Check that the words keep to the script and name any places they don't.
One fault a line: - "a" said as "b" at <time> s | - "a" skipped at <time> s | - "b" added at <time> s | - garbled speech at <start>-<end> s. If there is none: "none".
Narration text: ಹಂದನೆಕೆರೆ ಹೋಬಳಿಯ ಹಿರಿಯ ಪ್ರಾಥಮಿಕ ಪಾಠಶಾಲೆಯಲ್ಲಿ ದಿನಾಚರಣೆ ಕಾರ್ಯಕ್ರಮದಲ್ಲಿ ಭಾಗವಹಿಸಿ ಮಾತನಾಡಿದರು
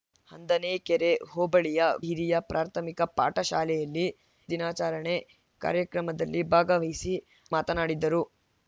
none